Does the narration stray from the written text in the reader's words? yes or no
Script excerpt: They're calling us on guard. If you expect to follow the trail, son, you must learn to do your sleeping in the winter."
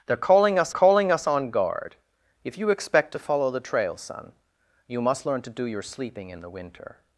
yes